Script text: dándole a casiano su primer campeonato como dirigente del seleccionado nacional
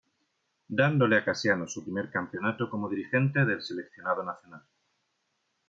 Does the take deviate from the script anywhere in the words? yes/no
no